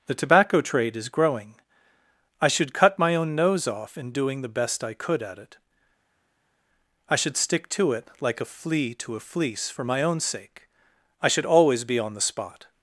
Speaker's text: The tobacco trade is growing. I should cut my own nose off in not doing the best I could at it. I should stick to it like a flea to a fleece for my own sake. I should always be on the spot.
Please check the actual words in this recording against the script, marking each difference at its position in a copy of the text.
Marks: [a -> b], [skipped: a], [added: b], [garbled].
The tobacco trade is growing. I should cut my own nose off in [skipped: not] doing the best I could at it. I should stick to it like a flea to a fleece for my own sake. I should always be on the spot.